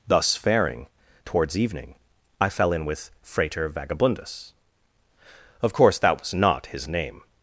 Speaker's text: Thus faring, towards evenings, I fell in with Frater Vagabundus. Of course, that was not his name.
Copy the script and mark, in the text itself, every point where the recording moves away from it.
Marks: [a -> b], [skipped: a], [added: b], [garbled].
Thus faring, towards [evenings, -> evening] I fell in with Frater Vagabundus. Of course, that was not his name.